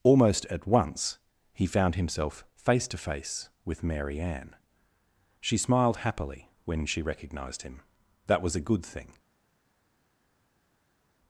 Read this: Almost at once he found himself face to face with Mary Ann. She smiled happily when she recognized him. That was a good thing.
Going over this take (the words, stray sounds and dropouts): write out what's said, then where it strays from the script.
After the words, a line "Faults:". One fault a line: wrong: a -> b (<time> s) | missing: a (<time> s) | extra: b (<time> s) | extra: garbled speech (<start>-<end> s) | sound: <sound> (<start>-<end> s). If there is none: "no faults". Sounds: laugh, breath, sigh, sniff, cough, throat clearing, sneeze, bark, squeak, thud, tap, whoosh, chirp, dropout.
Almost at once he found himself face to face with Mary Ann. She smiled happily when she recognized him. That was a good thing.
Faults:
no faults